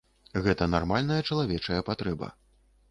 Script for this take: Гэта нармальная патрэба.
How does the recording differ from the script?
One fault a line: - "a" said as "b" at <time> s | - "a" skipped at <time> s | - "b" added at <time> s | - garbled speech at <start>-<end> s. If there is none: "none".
- "чалавечая" added at 1.3 s